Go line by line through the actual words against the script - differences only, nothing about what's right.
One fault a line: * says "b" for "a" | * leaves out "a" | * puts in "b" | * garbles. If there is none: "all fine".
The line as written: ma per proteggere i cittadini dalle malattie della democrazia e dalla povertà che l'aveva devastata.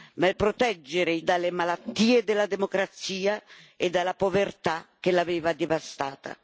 * leaves out "per"
* leaves out "cittadini"